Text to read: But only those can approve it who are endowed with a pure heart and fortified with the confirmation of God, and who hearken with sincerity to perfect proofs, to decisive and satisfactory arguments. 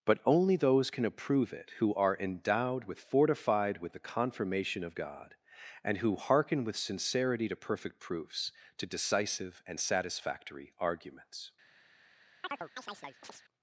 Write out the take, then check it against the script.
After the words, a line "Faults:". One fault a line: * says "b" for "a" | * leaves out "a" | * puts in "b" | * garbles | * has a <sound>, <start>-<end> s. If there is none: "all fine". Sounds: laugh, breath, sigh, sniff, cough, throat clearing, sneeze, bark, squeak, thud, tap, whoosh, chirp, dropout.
But only those can approve it who are endowed with fortified with the confirmation of God, and who hearken with sincerity to perfect proofs, to decisive and satisfactory arguments.
Faults:
* leaves out "a pure heart and"
* has a chirp, 12.4-13.4 s